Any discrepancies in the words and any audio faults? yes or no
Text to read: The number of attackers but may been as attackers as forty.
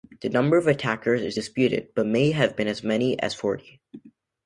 yes